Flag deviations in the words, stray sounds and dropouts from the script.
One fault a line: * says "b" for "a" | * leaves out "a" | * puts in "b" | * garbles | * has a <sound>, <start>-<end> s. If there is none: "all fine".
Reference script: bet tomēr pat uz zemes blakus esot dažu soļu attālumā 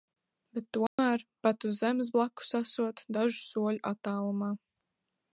* has a dropout, 0.9-1.0 s